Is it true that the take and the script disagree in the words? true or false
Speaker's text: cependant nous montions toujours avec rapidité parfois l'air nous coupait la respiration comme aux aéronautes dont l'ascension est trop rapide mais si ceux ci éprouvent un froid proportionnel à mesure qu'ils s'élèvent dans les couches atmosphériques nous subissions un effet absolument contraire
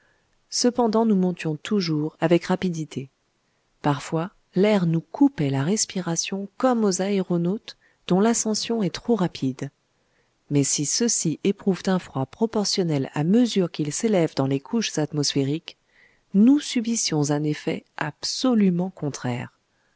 false